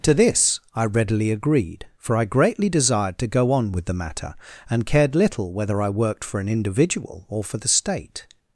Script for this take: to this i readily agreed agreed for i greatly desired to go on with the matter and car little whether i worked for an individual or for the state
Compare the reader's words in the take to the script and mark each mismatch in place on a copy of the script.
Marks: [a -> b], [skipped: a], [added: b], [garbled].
to this i readily agreed [skipped: agreed] for i greatly desired to go on with the matter and [car -> cared] little whether i worked for an individual or for the state